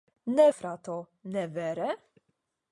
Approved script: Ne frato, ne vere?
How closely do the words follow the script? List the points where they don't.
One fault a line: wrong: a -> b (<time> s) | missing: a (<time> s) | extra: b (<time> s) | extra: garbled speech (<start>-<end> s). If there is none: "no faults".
no faults